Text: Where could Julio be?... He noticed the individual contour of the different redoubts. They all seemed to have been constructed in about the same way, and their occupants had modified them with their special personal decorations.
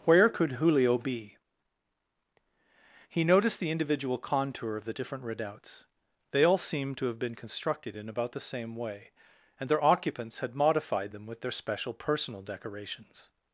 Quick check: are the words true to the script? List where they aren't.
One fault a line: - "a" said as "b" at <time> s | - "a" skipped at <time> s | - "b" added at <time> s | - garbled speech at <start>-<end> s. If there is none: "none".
none